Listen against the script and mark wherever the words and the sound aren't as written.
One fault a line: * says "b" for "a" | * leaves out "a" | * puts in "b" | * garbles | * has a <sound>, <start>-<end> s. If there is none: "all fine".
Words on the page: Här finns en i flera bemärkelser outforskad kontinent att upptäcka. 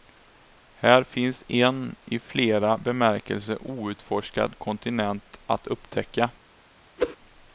* has a whoosh, 7.0-7.2 s